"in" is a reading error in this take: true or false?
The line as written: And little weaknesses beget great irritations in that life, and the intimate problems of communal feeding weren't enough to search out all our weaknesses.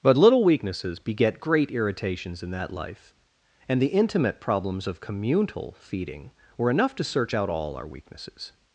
false